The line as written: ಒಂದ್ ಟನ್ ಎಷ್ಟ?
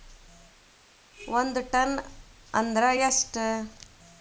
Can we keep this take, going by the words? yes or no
no